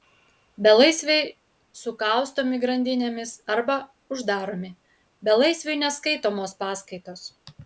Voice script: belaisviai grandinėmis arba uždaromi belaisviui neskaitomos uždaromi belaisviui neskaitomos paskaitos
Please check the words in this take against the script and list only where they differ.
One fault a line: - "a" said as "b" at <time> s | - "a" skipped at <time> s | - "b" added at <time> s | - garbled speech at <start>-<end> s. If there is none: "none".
- "sukaustomi" added at 1.8 s
- "uždaromi belaisviui neskaitomos" skipped at 6.6 s